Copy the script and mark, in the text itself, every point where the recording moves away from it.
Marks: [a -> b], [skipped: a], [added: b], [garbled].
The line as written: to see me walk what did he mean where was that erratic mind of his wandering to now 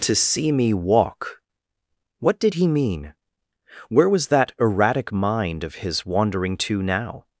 to see me walk what did he mean where was that erratic mind of his wandering to now